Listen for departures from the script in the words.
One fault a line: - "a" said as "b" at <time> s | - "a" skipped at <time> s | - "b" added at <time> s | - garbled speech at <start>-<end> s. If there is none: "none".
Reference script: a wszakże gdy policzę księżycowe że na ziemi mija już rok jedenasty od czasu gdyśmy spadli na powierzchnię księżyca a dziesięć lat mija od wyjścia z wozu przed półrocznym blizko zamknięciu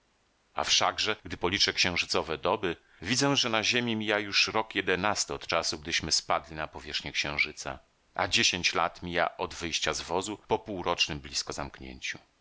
- "doby widzę" added at 2.4 s
- "przed" said as "po" at 10.5 s